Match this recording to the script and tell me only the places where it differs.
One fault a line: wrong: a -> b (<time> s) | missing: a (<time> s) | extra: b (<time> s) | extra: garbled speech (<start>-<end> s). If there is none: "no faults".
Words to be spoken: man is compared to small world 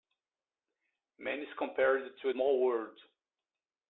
no faults